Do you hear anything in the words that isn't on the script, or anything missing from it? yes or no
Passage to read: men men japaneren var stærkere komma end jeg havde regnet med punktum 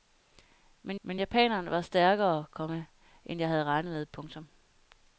no